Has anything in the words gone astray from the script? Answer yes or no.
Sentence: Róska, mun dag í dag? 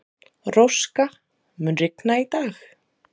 yes